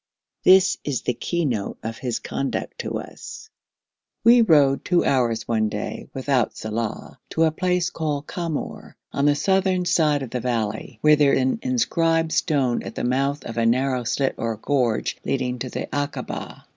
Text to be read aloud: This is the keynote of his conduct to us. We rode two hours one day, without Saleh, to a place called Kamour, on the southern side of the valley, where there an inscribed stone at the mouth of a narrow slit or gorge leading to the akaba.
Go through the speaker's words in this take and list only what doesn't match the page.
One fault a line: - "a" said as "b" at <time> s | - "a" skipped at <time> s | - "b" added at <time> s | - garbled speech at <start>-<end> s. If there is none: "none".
none